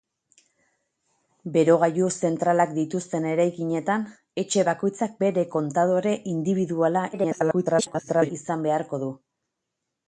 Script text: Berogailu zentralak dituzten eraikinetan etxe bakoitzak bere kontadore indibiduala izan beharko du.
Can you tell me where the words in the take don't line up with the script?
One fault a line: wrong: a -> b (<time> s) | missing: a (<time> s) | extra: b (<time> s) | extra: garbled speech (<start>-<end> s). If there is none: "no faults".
extra: garbled speech (7.1-8.3 s)